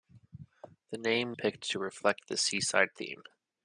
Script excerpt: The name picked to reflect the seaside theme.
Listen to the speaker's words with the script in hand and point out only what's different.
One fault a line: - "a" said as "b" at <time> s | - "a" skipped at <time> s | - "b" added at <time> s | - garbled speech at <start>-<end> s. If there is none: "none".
none